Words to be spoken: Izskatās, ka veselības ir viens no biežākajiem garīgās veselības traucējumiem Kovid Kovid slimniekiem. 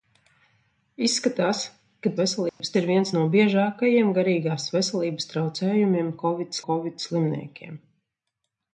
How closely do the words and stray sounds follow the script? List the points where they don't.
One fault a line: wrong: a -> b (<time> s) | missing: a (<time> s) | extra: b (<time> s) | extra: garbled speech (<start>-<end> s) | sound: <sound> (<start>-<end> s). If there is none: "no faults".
sound: dropout (2.5-2.6 s)